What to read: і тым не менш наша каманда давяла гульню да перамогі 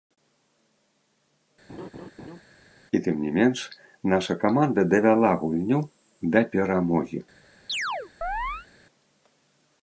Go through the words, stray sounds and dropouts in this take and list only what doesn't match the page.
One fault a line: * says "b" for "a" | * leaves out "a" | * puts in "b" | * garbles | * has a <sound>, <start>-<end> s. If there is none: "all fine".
* has a laugh, 1.7-2.4 s
* has a chirp, 7.7-8.7 s